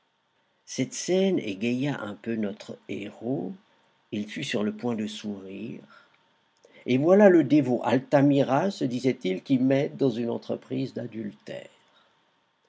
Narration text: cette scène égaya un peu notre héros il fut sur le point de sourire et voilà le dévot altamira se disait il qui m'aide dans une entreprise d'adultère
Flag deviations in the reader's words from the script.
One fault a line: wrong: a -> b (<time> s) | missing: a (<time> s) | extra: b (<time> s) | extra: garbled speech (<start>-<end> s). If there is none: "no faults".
no faults